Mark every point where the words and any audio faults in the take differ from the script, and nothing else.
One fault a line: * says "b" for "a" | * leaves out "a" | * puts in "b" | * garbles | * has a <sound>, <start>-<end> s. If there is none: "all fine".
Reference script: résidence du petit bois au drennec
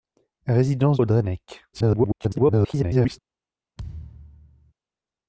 * leaves out "du petit bois"
* garbles
* has a thud, 3.8-4.7 s